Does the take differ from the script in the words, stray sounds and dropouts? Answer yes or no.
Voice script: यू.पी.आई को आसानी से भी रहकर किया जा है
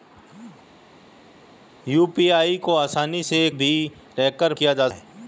no